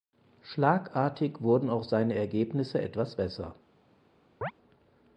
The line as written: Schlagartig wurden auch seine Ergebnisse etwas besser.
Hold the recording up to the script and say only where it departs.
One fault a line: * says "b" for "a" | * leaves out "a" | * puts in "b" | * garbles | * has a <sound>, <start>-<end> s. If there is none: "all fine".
* has a chirp, 4.4-4.5 s